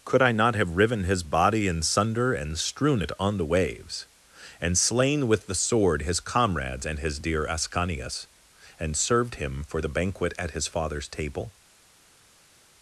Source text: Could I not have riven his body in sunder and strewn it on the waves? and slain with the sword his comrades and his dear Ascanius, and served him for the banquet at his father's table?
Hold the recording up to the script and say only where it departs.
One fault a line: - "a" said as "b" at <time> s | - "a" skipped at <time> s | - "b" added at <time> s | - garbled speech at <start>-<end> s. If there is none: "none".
none